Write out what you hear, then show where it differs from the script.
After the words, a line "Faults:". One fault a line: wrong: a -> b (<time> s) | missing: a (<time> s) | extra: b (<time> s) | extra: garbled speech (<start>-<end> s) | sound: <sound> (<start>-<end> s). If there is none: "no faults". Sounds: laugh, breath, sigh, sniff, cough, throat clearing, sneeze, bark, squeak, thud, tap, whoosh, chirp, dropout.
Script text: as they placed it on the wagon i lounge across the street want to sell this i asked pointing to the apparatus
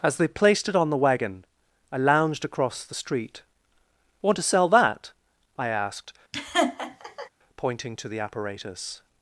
as they placed it on the wagon i lounged across the street want to sell that i asked pointing to the apparatus
Faults:
wrong: lounge -> lounged (2.0 s)
wrong: this -> that (4.7 s)
sound: laugh (6.3-7.3 s)